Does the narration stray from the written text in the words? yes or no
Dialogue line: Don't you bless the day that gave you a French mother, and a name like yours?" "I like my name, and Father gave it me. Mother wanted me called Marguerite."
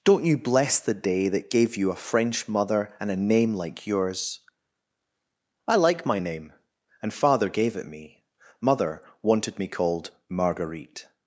no